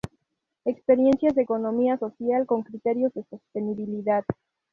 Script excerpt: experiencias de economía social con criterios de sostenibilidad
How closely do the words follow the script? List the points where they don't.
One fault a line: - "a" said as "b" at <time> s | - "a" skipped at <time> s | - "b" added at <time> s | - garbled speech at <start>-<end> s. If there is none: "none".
none